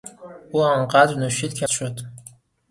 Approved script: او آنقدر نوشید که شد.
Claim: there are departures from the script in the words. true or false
false